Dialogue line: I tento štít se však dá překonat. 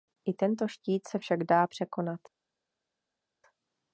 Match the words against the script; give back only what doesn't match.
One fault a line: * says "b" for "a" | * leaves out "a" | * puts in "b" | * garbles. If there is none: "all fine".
all fine